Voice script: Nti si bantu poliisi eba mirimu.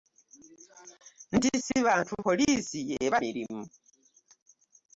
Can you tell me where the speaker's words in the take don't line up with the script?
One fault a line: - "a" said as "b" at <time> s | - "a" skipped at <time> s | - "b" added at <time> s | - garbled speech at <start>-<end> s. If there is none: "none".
none